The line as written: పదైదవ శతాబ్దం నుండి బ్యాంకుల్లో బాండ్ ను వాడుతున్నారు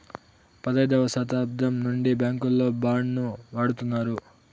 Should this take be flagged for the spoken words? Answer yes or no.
no